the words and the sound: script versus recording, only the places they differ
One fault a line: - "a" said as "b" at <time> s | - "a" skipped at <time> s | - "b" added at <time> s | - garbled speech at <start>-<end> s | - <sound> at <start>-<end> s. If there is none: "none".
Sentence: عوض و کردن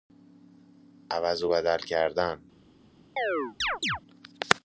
- "بدل" added at 1.5 s
- chirp at 3.2-4.0 s